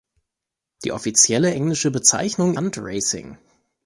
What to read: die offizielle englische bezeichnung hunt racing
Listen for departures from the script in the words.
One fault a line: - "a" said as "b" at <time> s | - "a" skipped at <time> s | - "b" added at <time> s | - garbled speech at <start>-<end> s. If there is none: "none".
none